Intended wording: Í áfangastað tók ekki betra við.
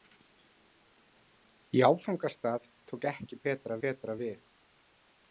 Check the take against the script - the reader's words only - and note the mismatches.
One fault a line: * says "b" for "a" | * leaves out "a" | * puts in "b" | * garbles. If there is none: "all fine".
* puts in "betra"